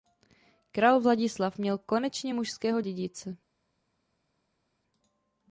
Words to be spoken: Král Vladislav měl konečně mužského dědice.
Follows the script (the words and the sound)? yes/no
yes